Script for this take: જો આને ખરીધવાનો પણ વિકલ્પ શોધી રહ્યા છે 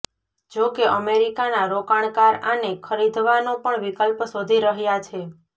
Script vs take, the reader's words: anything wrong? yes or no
yes